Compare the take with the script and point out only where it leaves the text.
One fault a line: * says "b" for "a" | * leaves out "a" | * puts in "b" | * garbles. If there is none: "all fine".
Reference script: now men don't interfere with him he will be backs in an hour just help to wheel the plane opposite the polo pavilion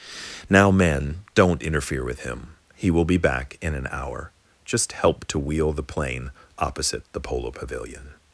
* says "back" for "backs"